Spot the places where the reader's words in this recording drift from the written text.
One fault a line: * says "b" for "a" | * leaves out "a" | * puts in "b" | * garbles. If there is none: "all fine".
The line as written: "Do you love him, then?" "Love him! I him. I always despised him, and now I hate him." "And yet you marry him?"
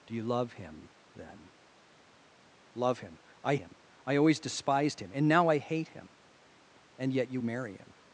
all fine